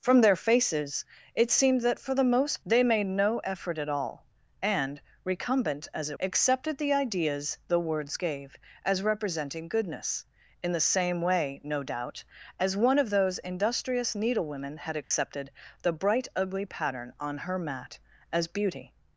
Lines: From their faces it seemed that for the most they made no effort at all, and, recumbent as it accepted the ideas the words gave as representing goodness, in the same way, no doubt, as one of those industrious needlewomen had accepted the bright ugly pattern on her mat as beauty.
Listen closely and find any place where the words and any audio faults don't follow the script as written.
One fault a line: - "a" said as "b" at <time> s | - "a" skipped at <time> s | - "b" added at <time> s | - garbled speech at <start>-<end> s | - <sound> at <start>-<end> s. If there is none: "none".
- dropout at 15.0-15.1 s